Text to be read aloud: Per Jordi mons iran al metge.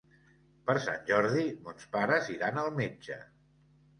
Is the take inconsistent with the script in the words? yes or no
yes